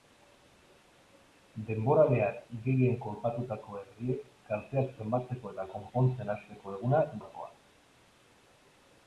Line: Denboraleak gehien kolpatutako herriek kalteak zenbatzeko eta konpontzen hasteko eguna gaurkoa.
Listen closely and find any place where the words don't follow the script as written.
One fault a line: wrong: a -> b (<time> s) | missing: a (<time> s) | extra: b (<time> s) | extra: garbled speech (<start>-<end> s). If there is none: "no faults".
no faults